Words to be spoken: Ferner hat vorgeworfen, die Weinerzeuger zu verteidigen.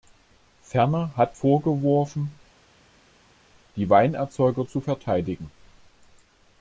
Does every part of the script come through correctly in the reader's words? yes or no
yes